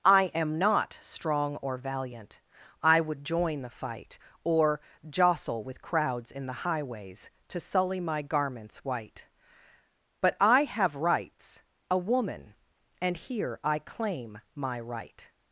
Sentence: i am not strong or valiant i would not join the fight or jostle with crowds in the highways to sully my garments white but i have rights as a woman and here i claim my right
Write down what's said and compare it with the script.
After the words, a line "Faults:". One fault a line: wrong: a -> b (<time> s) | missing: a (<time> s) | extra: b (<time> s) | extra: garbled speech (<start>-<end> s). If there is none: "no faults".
i am not strong or valiant i would join the fight or jostle with crowds in the highways to sully my garments white but i have rights a woman and here i claim my right
Faults:
missing: not (3.2 s)
missing: as (11.6 s)